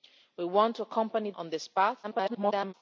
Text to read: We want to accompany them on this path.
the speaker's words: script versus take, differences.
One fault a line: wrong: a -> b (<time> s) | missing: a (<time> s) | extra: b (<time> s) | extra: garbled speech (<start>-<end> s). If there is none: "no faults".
missing: them (1.3 s)
extra: garbled speech (2.0-2.7 s)